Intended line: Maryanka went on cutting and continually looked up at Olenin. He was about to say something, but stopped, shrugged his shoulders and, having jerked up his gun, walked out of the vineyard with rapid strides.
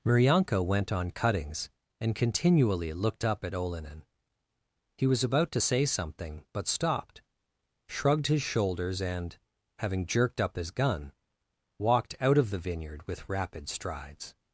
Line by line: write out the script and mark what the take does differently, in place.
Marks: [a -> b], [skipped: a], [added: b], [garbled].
Maryanka went on [cutting -> cuttings] and continually looked up at Olenin. He was about to say something, but stopped, shrugged his shoulders and, having jerked up his gun, walked out of the vineyard with rapid strides.